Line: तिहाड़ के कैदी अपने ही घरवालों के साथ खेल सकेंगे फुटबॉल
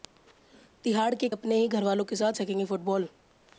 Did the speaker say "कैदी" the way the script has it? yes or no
no